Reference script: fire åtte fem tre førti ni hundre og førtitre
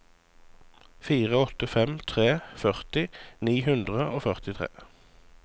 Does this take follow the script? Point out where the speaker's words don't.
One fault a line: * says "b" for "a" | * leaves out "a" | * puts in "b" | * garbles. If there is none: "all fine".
all fine